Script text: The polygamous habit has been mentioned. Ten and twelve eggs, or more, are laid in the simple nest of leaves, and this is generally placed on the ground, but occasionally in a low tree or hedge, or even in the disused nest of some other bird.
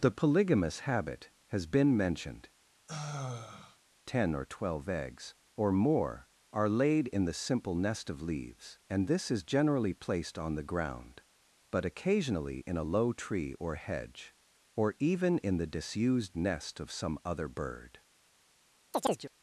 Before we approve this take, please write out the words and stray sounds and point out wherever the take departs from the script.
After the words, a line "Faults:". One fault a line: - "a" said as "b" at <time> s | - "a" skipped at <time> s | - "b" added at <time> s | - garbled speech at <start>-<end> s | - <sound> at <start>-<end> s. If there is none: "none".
The polygamous habit has been mentioned. Ten or twelve eggs, or more, are laid in the simple nest of leaves, and this is generally placed on the ground, but occasionally in a low tree or hedge, or even in the disused nest of some other bird.
Faults:
- sigh at 2.9-3.8 s
- "and" said as "or" at 4.3 s
- chirp at 18.9-19.3 s